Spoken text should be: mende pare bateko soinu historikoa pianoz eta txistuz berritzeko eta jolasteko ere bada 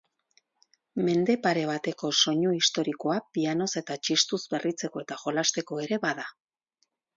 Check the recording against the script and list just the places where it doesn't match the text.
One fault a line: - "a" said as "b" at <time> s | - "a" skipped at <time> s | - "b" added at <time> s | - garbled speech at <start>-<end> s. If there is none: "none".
none